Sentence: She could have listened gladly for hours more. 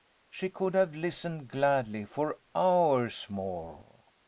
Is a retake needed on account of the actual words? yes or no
no